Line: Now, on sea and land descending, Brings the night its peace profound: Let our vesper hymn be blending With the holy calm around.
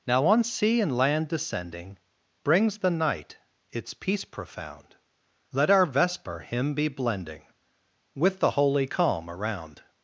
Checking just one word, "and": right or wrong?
right